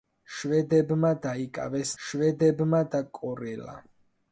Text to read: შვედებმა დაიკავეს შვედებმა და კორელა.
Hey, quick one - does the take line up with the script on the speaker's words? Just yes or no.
yes